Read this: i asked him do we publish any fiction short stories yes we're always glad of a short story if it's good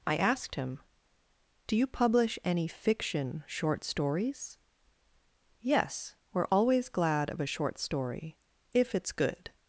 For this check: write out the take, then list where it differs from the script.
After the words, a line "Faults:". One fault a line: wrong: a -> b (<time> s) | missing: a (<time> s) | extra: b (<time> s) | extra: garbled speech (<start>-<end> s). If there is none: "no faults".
i asked him do you publish any fiction short stories yes we're always glad of a short story if it's good
Faults:
wrong: we -> you (1.8 s)